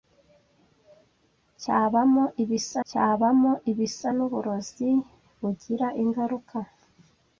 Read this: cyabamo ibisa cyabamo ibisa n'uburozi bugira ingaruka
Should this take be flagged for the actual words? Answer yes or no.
no